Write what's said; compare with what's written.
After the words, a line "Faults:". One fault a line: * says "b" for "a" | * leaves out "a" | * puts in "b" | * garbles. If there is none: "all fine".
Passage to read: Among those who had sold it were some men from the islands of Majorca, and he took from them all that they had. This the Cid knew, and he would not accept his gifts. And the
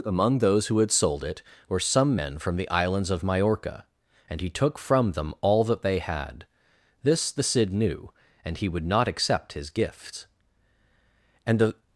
Among those who had sold it were some men from the islands of Majorca, and he took from them all that they had. This the Cid knew, and he would not accept his gifts. And the
Faults:
all fine